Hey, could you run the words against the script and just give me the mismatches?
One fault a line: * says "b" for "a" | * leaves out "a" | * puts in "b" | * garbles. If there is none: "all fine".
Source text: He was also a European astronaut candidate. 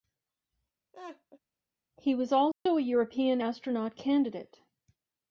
all fine